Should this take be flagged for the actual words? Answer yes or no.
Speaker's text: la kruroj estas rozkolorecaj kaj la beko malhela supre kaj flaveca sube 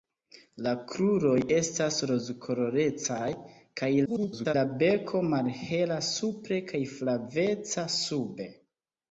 yes